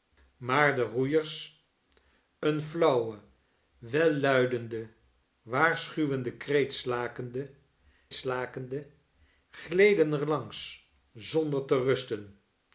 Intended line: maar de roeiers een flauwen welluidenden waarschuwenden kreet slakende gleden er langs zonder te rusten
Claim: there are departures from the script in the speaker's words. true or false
true